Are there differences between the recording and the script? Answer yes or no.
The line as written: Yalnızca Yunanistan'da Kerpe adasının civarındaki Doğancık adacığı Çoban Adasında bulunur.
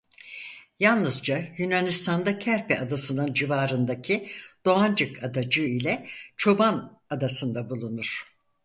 yes